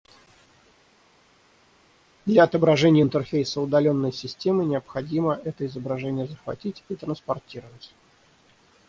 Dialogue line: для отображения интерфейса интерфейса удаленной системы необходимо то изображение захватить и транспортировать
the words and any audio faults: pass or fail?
fail